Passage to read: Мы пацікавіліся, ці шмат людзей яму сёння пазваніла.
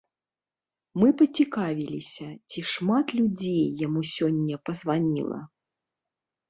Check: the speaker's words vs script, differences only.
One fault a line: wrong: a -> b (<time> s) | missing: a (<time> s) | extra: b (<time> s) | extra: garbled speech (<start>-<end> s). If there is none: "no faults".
no faults